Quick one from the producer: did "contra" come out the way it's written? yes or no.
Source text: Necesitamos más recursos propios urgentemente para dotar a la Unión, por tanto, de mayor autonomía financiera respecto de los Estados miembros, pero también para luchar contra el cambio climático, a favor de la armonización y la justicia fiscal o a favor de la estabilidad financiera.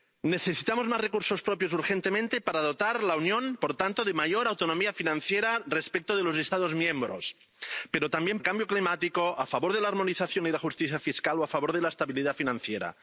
no